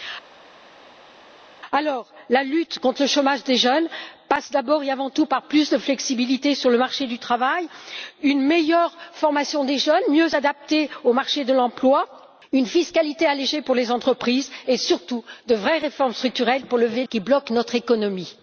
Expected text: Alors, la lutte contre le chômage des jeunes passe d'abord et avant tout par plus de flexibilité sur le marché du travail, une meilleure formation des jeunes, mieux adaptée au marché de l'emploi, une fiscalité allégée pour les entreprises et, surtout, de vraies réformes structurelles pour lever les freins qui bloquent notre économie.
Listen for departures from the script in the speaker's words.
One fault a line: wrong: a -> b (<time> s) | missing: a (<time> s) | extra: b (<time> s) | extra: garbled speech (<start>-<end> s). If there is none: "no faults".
missing: les freins (17.0 s)